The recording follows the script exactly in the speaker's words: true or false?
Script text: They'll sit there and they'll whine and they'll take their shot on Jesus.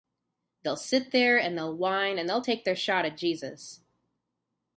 false